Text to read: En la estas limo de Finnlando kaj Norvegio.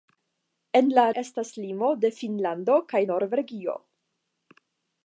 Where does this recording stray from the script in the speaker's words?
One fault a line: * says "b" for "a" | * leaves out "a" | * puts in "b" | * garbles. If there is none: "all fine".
all fine